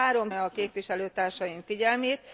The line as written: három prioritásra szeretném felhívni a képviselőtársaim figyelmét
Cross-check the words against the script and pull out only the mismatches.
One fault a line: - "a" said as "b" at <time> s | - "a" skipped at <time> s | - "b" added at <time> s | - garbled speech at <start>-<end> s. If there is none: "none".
- "prioritásra szeretném felhívni" skipped at 0.3 s